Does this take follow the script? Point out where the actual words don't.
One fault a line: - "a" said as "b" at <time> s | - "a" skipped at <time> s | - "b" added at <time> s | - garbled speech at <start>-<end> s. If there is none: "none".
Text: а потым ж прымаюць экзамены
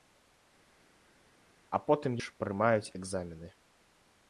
none